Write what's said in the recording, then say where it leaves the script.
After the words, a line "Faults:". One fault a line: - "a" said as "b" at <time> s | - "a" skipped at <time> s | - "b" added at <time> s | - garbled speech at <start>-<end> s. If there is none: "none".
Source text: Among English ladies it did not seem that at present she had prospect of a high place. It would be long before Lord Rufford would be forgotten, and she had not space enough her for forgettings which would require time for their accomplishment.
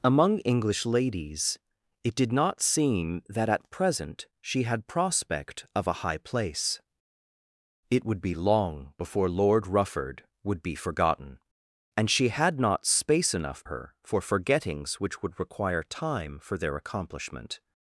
Among English ladies it did not seem that at present she had prospect of a high place. It would be long before Lord Rufford would be forgotten, and she had not space enough her for forgettings which would require time for their accomplishment.
Faults:
none